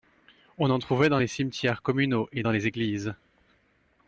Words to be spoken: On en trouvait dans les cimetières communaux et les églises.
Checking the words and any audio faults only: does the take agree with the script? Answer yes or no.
no